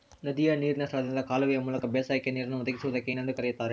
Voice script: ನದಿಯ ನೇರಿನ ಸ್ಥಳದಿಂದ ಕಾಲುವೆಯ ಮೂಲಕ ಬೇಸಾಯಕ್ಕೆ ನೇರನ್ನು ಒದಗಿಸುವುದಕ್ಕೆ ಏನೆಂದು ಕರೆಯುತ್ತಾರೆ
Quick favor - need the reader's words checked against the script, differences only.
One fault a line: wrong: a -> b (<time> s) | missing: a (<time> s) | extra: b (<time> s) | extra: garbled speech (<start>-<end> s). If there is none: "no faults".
no faults